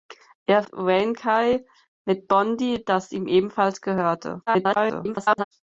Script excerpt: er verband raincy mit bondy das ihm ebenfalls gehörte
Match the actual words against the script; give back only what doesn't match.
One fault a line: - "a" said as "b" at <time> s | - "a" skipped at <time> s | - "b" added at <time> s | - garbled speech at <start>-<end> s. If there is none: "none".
- "verband" skipped at 0.6 s
- garbled speech at 4.5-5.4 s